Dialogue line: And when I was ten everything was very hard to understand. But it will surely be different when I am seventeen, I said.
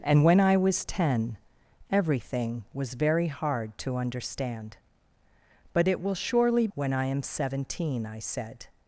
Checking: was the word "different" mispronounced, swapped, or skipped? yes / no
yes